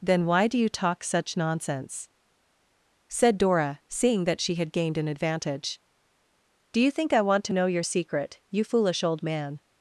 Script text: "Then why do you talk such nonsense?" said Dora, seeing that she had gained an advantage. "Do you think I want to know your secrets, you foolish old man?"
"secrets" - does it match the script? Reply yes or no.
no